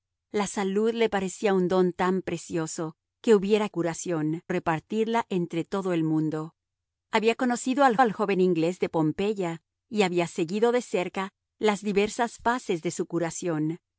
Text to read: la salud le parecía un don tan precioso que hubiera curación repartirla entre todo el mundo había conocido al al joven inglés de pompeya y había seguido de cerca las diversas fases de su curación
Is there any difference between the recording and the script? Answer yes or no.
no